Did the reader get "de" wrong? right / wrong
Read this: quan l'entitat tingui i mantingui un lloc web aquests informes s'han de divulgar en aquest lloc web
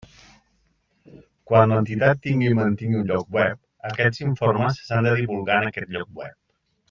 right